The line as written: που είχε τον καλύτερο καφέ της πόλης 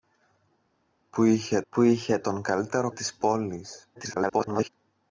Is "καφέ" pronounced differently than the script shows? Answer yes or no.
yes